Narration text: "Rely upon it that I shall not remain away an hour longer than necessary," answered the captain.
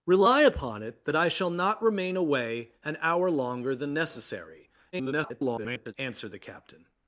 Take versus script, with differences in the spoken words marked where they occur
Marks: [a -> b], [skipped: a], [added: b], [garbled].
"Rely upon it that I shall not remain away an hour longer than necessary," [garbled] answered the captain.